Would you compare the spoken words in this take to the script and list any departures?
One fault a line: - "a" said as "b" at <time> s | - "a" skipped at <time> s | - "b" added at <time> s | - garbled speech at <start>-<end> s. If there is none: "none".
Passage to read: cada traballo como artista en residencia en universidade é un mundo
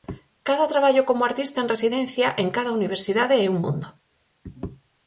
- "cada" added at 2.6 s